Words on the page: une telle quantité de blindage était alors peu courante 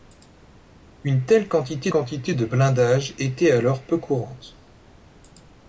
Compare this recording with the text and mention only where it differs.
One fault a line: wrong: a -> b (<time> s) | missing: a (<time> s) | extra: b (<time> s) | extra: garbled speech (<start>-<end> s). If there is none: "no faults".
extra: quantité (1.9 s)